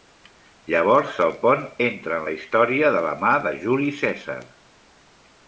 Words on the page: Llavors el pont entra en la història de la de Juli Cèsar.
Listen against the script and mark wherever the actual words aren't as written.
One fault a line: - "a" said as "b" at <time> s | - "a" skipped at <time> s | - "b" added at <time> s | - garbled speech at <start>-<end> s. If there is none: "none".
- "mà" added at 3.2 s